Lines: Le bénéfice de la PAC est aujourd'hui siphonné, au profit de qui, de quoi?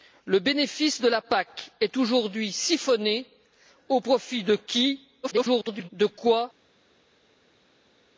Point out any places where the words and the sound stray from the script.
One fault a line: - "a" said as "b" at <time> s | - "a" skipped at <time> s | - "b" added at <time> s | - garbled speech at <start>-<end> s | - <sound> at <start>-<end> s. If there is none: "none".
- garbled speech at 5.2-5.9 s